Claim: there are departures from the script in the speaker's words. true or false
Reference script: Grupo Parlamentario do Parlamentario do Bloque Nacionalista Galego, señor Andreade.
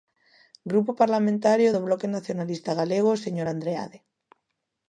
true